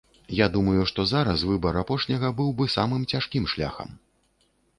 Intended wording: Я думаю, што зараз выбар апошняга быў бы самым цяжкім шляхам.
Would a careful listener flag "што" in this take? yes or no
no